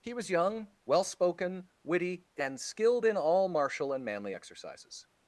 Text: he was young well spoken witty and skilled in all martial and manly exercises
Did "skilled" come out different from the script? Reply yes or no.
no